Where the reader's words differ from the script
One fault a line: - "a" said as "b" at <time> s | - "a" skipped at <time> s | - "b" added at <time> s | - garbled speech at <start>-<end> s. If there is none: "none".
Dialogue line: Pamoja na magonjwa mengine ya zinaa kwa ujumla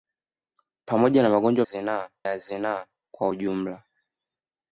- "mengine" said as "zinaa" at 1.6 s